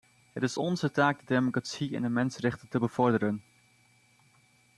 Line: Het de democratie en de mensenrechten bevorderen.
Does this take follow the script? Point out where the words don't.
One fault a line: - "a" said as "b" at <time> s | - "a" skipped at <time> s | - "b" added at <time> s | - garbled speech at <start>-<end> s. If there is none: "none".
- "is onze taak" added at 0.4 s
- "te" added at 2.7 s